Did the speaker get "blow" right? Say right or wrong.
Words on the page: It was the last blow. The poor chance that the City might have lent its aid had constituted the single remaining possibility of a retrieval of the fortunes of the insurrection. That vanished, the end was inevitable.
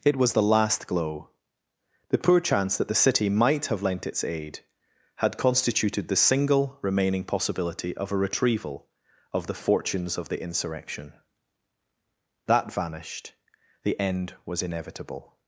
wrong